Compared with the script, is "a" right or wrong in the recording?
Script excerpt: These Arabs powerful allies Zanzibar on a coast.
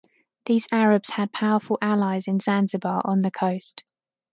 wrong